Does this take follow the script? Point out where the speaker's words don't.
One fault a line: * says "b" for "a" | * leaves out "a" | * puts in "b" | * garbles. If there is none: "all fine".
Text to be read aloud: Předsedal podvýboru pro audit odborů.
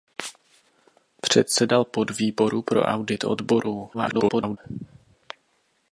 * garbles